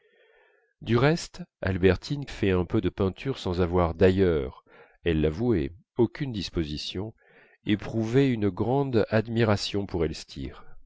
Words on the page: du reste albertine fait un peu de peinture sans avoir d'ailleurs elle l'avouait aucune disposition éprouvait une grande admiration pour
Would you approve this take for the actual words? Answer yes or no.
yes